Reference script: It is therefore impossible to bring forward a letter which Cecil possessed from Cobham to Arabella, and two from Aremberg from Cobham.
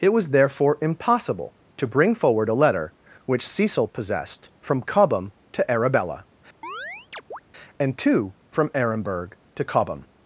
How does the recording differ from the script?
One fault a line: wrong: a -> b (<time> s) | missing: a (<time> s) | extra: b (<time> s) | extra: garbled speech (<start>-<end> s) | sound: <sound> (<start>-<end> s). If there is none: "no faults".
wrong: is -> was (0.1 s)
sound: chirp (6.6-7.4 s)
wrong: from -> to (9.5 s)